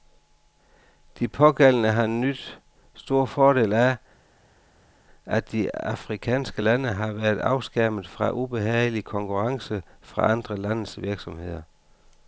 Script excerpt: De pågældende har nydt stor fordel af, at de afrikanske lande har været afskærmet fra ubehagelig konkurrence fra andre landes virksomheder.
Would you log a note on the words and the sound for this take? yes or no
no